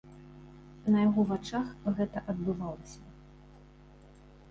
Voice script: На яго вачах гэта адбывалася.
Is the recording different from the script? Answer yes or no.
no